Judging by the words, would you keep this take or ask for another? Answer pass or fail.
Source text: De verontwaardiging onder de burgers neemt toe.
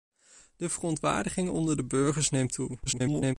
fail